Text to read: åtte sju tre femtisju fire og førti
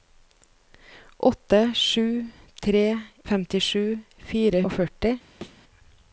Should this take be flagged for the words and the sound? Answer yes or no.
yes